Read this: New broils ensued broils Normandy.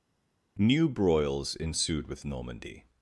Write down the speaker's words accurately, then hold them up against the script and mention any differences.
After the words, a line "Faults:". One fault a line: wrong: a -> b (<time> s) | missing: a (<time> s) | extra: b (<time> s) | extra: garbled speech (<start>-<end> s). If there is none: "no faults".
New broils ensued with Normandy.
Faults:
wrong: broils -> with (2.1 s)